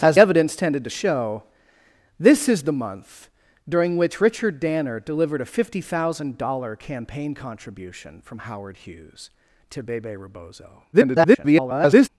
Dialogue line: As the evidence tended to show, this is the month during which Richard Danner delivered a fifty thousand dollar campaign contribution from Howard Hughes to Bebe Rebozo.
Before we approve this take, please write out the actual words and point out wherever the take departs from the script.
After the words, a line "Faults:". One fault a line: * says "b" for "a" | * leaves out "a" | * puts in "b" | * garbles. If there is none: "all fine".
As evidence tended to show, this is the month during which Richard Danner delivered a fifty thousand dollar campaign contribution from Howard Hughes to Bebe Rebozo. [garbled]
Faults:
* leaves out "the"
* garbles